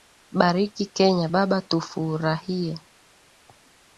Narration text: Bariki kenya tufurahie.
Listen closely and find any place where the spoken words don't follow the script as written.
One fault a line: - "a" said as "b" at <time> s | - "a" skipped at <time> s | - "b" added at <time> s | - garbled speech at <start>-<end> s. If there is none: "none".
- "baba" added at 1.3 s